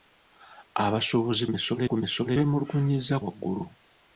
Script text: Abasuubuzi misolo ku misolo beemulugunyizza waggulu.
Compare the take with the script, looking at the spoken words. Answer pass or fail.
pass